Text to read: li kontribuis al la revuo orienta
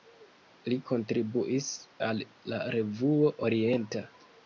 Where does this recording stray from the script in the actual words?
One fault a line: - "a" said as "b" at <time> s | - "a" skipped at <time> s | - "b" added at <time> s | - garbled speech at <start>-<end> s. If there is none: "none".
none